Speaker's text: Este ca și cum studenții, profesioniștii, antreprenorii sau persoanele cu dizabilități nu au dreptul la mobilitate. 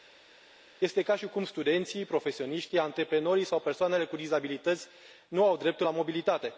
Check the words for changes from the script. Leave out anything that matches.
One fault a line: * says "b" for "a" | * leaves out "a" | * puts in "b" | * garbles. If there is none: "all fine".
all fine